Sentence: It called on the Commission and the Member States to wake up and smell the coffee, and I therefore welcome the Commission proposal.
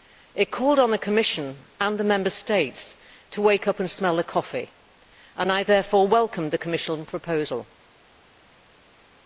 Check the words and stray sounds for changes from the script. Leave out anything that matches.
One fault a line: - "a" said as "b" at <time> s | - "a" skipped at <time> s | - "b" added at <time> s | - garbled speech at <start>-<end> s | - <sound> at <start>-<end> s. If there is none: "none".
none